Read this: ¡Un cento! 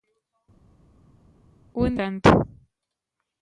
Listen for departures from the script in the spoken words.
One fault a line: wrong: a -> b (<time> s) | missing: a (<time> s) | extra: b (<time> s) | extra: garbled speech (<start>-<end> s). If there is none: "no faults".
no faults